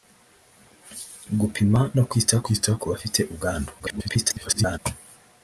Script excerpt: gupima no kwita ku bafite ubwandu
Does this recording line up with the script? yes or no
no